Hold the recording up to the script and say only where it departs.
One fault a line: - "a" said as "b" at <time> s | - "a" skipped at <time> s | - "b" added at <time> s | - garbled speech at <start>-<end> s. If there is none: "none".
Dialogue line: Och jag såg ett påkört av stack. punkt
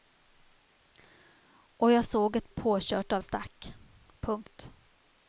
none